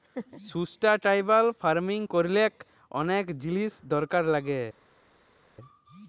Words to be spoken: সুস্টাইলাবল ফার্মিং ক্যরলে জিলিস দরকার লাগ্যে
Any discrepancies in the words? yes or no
yes